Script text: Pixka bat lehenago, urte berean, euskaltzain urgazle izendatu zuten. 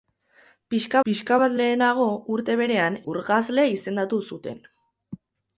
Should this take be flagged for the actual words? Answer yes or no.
yes